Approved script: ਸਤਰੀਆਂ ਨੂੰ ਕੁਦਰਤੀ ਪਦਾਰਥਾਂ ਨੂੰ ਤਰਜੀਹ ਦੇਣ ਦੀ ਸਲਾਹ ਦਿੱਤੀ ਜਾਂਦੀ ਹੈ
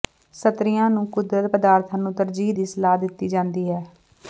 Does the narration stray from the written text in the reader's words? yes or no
yes